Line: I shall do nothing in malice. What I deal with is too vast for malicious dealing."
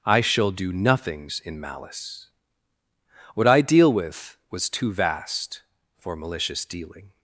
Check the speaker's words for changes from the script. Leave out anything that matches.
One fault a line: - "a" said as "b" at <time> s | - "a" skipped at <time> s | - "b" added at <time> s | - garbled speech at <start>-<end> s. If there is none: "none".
- "nothing" said as "nothings" at 0.7 s
- "is" said as "was" at 4.5 s